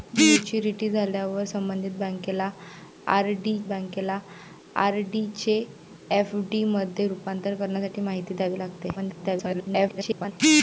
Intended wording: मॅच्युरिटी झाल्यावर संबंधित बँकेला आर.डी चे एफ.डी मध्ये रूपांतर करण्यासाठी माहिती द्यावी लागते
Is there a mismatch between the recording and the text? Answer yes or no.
yes